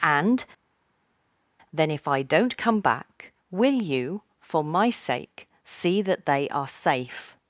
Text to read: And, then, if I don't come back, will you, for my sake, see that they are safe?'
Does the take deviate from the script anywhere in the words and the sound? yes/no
no